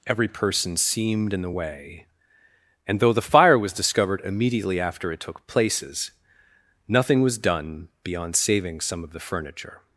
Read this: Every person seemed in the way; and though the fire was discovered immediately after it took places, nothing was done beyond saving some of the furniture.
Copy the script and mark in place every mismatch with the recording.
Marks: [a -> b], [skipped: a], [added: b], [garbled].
Every person seemed in the way; and though the fire was discovered immediately after it took places, nothing was done beyond saving some of the furniture.